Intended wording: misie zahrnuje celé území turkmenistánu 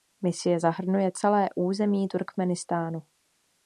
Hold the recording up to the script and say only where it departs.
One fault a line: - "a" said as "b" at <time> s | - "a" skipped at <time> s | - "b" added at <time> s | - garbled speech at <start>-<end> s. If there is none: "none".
none